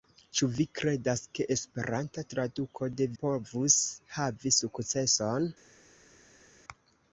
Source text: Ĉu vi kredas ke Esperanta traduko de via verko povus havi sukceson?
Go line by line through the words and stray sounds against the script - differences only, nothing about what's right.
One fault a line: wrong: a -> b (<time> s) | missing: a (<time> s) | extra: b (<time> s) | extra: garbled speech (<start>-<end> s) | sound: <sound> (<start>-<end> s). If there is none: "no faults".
missing: via verko (3.1 s)